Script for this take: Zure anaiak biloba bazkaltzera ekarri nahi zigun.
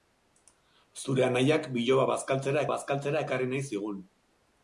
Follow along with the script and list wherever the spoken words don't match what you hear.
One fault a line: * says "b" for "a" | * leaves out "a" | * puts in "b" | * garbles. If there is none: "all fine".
* puts in "bazkaltzera"